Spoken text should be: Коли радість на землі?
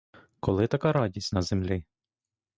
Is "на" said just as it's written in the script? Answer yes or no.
yes